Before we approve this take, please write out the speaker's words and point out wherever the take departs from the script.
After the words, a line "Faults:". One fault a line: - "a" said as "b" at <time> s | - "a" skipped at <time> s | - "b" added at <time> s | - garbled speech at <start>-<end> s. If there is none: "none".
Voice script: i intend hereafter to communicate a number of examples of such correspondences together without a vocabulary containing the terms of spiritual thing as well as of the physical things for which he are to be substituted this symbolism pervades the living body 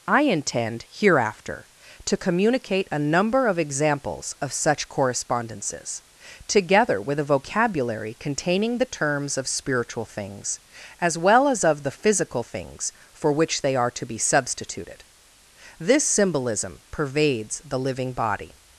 i intend hereafter to communicate a number of examples of such correspondences together with a vocabulary containing the terms of spiritual things as well as of the physical things for which they are to be substituted this symbolism pervades the living body
Faults:
- "without" said as "with" at 7.0 s
- "thing" said as "things" at 10.1 s
- "he" said as "they" at 13.6 s